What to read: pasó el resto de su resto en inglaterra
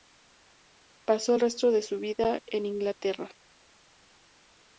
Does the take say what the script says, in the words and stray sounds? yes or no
no